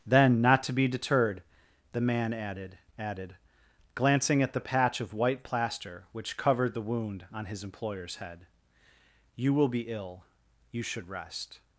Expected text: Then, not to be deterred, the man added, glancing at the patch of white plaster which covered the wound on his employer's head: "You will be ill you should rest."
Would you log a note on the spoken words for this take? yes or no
yes